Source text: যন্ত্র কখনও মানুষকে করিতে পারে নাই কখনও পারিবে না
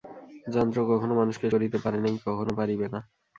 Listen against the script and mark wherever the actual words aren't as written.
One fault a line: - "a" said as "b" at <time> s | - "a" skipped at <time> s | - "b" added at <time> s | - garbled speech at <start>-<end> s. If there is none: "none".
none